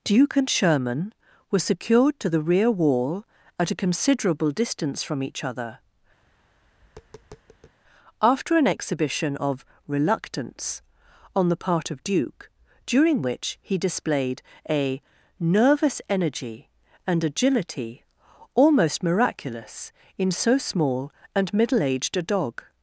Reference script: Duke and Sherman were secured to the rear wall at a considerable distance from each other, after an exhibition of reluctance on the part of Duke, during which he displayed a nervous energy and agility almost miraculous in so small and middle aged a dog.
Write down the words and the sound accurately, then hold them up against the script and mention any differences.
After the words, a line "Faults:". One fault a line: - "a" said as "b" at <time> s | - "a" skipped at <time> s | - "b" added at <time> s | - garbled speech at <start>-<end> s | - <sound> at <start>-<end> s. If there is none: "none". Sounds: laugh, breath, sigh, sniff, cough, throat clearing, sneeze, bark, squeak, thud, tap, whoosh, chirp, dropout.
Duke and Sherman were secured to the rear wall at a considerable distance from each other, after an exhibition of reluctance on the part of Duke, during which he displayed a nervous energy and agility almost miraculous in so small and middle aged a dog.
Faults:
- tap at 6.2-7.8 s